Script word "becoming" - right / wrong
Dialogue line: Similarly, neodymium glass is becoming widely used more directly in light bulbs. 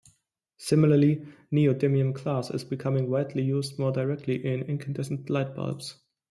right